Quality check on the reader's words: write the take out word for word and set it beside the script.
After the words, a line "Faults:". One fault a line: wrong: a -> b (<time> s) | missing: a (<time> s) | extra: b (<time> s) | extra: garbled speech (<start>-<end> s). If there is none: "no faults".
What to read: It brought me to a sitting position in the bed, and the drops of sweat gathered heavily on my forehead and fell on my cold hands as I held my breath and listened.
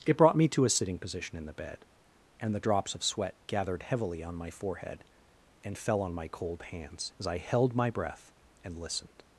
It brought me to a sitting position in the bed, and the drops of sweat gathered heavily on my forehead and fell on my cold hands as I held my breath and listened.
Faults:
no faults